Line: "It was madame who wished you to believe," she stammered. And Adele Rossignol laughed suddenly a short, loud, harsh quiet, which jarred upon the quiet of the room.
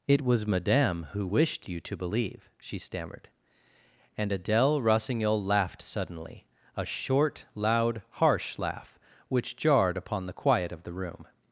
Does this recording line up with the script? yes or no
no